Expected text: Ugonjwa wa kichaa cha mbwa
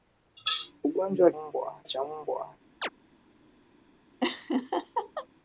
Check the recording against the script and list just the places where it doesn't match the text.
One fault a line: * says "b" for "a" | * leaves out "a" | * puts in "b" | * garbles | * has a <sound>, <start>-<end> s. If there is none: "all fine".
* says "mbwa" for "kichaa"
* has a chirp, 2.8-2.9 s
* has a laugh, 4.2-5.3 s